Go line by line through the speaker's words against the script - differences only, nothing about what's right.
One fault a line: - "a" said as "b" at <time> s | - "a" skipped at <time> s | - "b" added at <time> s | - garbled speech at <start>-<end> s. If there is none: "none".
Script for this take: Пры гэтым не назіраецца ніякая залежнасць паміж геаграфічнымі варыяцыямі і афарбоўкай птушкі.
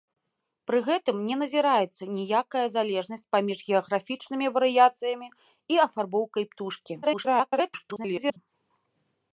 - garbled speech at 7.0-8.4 s